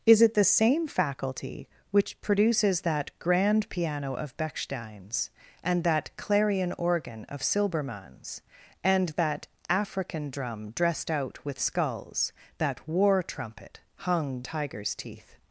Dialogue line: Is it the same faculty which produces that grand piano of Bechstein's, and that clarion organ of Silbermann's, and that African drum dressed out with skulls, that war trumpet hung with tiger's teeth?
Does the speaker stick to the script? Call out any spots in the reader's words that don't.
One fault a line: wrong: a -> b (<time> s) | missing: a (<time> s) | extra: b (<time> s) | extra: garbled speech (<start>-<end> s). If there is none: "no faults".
missing: with (14.5 s)